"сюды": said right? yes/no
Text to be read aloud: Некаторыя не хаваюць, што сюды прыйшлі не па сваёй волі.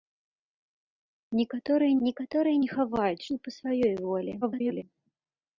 no